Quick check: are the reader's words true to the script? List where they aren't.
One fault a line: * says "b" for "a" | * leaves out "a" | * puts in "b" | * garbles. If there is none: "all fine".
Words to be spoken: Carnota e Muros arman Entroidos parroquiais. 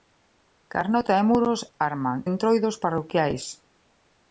all fine